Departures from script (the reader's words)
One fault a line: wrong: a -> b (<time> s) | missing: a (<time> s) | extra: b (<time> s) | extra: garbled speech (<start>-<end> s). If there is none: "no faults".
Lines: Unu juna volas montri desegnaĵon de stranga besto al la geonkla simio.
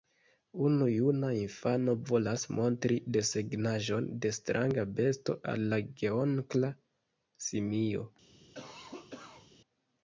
extra: infano (1.4 s)